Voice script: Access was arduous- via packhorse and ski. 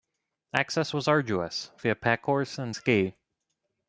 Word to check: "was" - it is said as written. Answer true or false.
true